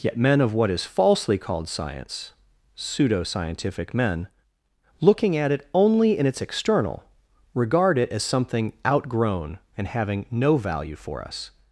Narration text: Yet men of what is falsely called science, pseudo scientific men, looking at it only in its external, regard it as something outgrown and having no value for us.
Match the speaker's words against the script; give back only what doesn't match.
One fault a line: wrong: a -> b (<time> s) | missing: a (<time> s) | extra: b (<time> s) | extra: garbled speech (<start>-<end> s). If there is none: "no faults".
no faults